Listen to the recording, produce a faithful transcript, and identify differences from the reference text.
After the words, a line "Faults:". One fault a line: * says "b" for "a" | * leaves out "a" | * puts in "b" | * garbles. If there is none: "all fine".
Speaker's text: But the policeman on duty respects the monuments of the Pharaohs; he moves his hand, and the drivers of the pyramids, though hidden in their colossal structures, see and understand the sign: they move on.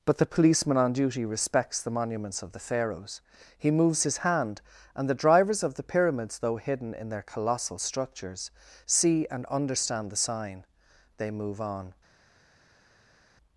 But the policeman on duty respects the monuments of the Pharaohs; he moves his hand, and the drivers of the pyramids, though hidden in their colossal structures, see and understand the sign: they move on.
Faults:
all fine